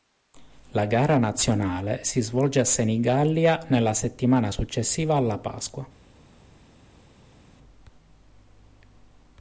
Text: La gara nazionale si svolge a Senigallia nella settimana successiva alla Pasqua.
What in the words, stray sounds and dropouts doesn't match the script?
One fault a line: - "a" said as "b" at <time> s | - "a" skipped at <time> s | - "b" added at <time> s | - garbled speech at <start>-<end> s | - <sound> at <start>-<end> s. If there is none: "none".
none